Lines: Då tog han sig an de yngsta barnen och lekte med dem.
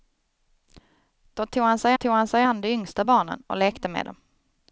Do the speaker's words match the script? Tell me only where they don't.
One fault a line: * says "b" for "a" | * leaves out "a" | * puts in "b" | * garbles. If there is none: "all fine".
* puts in "tog han sig"